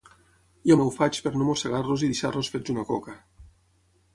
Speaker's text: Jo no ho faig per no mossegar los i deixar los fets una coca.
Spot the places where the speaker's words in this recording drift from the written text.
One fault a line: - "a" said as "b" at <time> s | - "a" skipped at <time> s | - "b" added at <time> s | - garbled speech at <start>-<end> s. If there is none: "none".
none